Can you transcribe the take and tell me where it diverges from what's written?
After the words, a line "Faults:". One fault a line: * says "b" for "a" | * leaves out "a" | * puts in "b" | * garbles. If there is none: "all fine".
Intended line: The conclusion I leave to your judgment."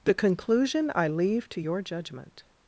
The conclusion I leave to your judgment."
Faults:
all fine